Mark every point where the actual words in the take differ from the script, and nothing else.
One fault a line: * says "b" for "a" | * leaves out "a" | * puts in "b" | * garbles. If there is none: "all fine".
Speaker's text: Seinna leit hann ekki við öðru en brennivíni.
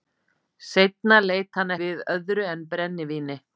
* leaves out "ekki"